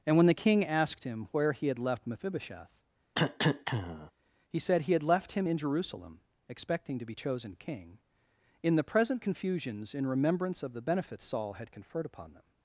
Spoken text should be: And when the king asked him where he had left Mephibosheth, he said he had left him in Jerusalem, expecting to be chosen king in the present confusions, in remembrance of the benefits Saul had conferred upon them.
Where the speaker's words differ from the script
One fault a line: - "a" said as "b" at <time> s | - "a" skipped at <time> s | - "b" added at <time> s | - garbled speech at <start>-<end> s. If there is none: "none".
none